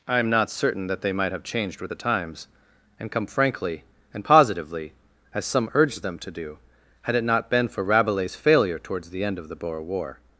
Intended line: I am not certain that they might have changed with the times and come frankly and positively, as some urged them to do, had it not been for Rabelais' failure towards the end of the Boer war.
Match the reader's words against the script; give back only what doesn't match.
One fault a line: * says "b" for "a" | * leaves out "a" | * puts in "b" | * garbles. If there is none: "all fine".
all fine